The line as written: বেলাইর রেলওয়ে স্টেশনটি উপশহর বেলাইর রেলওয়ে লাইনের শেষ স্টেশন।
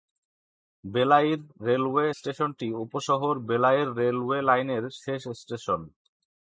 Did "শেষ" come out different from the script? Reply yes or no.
no